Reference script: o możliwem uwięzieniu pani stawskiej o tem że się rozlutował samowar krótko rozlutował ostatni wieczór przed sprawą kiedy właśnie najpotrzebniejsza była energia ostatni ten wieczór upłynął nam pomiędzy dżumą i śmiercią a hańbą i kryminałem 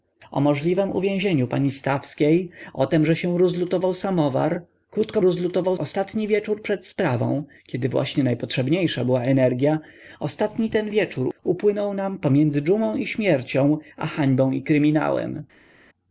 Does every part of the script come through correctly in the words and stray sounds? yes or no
yes